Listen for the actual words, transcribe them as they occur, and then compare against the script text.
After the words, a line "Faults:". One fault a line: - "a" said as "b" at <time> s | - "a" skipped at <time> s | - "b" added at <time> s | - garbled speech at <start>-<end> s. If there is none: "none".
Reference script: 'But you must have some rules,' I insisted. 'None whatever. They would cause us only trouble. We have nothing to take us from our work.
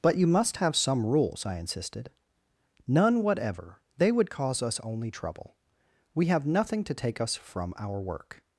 'But you must have some rules,' I insisted. 'None whatever. They would cause us only trouble. We have nothing to take us from our work.
Faults:
none